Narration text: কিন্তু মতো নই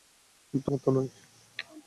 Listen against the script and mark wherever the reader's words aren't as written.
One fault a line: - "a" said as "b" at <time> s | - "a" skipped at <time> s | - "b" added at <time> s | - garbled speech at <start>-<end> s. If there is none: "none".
none